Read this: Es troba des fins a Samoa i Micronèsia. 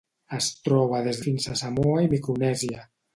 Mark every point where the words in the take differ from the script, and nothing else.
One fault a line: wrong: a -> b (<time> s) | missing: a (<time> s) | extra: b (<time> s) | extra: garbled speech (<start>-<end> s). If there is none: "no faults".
no faults